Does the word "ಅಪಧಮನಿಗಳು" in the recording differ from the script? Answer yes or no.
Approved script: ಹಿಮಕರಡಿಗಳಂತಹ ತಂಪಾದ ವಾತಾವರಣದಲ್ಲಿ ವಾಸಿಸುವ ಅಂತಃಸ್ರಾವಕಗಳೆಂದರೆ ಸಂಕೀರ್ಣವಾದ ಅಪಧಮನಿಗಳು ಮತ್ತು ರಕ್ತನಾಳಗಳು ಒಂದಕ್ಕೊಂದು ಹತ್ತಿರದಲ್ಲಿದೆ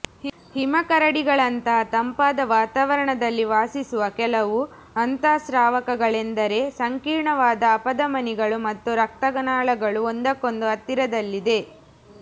no